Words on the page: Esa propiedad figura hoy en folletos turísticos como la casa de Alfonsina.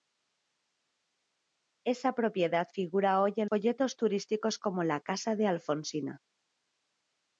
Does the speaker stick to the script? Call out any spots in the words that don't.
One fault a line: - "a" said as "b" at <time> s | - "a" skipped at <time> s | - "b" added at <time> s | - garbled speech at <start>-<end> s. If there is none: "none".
none